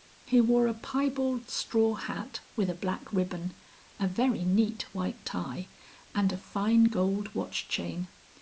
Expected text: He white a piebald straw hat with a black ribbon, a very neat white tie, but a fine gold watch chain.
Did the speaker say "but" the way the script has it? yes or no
no